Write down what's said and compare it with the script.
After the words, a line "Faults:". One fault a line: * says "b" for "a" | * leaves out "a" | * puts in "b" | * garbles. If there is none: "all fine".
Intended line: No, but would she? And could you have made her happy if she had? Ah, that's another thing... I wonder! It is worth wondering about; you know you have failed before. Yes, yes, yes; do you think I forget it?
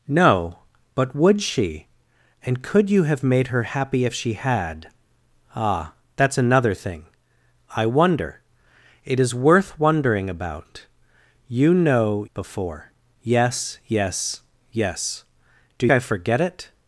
No, but would she? And could you have made her happy if she had? Ah, that's another thing... I wonder! It is worth wondering about; you know before. Yes, yes, yes; do I forget it?
Faults:
* leaves out "you have failed"
* leaves out "you think"